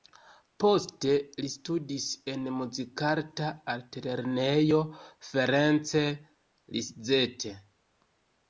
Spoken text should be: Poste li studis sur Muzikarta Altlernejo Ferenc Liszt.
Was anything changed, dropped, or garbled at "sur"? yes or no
yes